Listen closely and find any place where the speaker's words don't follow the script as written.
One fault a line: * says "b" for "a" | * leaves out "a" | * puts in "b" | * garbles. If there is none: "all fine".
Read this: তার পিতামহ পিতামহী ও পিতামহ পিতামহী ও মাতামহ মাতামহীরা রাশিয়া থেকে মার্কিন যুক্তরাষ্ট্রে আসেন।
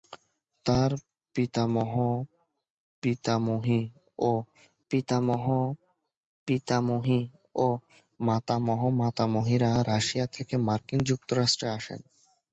all fine